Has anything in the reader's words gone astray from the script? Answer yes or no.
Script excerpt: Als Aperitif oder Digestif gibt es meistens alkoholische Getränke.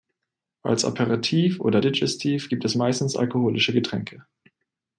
no